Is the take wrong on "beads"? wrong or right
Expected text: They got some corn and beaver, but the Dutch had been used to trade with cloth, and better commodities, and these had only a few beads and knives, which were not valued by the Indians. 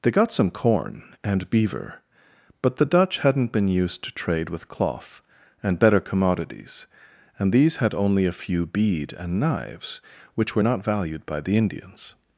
wrong